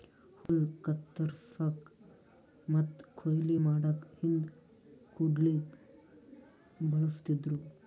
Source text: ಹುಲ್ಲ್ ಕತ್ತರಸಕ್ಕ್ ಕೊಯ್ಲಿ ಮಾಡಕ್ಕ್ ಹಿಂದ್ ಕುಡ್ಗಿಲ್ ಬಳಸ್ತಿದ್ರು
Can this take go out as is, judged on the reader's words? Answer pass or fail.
fail